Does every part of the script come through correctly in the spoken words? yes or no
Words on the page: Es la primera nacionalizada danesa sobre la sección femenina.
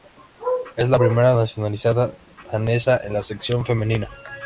no